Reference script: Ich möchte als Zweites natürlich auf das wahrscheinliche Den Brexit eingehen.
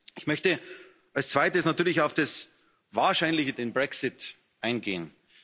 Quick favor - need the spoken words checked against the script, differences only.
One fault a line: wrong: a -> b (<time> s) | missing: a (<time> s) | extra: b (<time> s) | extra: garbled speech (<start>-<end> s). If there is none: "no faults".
no faults